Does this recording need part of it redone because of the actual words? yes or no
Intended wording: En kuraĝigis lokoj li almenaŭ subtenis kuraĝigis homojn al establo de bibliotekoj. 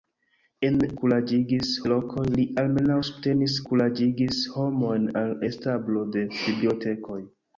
no